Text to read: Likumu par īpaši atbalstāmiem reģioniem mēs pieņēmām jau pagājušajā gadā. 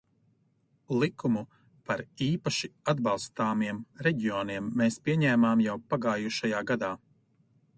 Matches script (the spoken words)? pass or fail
pass